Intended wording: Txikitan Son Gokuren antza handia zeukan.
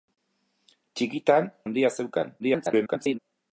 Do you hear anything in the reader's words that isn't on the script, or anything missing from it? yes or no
yes